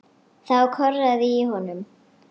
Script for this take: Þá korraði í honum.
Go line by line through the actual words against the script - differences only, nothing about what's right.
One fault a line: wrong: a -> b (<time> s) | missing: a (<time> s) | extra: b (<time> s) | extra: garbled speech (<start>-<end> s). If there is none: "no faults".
no faults